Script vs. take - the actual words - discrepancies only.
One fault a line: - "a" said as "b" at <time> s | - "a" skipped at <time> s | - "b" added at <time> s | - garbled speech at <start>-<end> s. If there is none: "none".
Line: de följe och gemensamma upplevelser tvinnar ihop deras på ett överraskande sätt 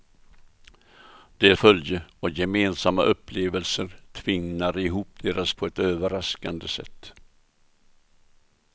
none